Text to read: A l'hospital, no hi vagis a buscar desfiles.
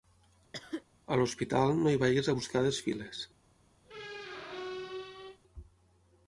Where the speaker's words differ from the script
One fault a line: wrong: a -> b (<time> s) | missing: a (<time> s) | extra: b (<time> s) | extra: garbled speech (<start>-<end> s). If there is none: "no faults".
no faults